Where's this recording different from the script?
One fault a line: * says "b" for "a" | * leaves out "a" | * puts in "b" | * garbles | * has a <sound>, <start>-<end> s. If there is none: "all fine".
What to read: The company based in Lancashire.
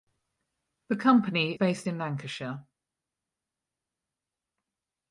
all fine